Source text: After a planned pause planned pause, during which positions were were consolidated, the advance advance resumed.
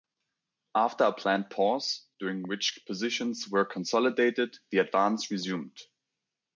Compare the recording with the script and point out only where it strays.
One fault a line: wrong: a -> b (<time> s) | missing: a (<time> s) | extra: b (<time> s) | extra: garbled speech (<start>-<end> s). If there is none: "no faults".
missing: planned pause (2.1 s)
missing: were (3.6 s)
missing: advance (5.3 s)